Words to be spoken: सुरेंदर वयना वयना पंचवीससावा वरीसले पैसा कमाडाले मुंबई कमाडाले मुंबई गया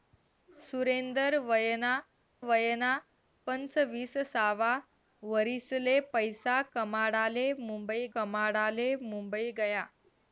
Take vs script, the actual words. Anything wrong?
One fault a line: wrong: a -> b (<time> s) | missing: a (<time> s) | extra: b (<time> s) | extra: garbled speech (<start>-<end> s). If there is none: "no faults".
no faults